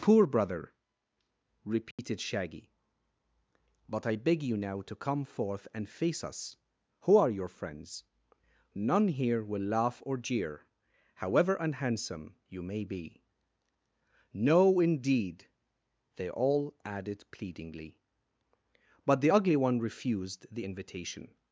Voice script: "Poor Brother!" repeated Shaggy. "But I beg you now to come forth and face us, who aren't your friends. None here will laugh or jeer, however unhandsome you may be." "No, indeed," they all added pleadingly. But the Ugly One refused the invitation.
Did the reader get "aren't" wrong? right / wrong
wrong